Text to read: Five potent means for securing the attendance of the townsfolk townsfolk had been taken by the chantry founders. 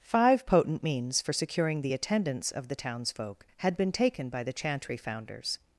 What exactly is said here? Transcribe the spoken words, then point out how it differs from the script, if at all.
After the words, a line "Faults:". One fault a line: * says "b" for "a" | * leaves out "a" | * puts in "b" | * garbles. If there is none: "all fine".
Five potent means for securing the attendance of the townsfolk had been taken by the chantry founders.
Faults:
* leaves out "townsfolk"